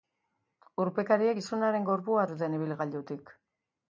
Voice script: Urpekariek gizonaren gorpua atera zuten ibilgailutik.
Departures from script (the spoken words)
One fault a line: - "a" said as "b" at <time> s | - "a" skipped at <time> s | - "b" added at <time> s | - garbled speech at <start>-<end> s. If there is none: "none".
- "atera" skipped at 2.2 s